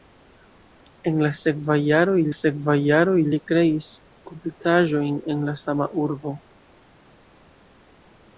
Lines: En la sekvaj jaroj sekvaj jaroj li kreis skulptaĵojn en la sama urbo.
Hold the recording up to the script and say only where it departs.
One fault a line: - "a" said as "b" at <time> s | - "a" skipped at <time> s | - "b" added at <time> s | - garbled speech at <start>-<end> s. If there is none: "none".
none